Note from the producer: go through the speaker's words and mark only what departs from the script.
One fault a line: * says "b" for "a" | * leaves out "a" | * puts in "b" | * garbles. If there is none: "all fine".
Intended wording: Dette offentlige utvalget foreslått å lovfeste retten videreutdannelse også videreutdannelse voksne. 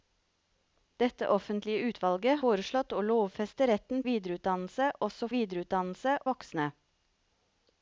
all fine